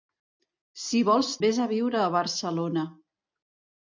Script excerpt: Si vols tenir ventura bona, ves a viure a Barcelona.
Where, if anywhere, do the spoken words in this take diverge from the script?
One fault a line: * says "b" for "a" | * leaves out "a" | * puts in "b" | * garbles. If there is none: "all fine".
* leaves out "tenir ventura bona"